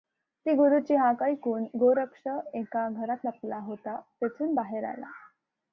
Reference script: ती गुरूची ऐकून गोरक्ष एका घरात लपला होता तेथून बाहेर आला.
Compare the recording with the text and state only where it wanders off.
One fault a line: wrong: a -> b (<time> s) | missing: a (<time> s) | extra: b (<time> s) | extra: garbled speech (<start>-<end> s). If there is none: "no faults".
extra: हाक (0.9 s)